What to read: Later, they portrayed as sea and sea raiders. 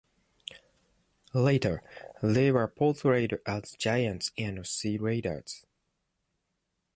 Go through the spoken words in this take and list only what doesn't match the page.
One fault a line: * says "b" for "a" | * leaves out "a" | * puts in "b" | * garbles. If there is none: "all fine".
* puts in "were"
* says "giants" for "sea"